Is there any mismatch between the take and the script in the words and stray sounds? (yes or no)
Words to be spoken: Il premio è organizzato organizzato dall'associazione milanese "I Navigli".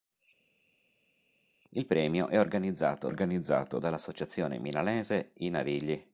no